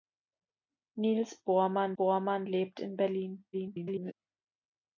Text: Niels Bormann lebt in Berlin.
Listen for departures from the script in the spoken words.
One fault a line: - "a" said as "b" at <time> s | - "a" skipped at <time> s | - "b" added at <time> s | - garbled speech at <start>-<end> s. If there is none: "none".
- "Bormann" added at 2.0 s
- garbled speech at 3.5-4.1 s